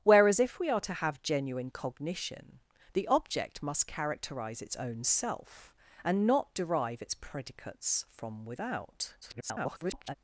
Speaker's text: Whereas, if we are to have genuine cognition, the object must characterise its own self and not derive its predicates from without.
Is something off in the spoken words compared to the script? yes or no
yes